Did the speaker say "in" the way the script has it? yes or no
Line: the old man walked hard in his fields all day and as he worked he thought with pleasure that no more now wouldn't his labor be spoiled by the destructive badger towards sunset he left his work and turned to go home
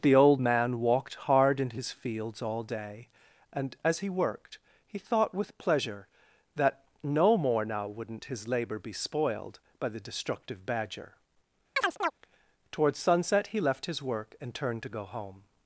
yes